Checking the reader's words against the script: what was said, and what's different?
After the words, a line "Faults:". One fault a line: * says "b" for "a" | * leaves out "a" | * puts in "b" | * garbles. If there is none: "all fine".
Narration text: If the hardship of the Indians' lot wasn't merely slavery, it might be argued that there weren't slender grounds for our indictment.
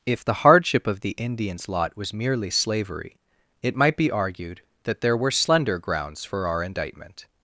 If the hardship of the Indians' lot was merely slavery, it might be argued that there were slender grounds for our indictment.
Faults:
* says "was" for "wasn't"
* says "were" for "weren't"